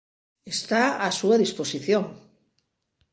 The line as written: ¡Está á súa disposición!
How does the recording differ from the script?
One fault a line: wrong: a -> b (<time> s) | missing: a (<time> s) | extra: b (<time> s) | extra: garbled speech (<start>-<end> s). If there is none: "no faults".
no faults